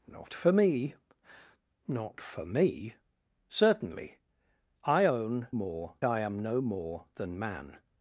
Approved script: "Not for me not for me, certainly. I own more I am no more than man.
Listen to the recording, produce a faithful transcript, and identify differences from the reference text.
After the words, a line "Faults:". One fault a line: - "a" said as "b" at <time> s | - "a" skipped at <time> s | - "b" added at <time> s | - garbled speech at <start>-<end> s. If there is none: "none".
"Not for me not for me, certainly. I own more I am no more than man.
Faults:
none